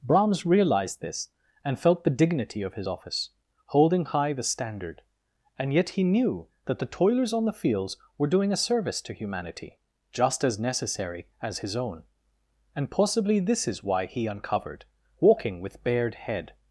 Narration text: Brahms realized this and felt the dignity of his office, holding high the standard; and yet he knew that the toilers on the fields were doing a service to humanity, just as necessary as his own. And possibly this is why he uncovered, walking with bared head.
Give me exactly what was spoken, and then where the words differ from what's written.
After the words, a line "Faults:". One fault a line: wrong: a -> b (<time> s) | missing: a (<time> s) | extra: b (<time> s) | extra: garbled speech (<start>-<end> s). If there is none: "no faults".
Brahms realized this and felt the dignity of his office, holding high the standard; and yet he knew that the toilers on the fields were doing a service to humanity, just as necessary as his own. And possibly this is why he uncovered, walking with bared head.
Faults:
no faults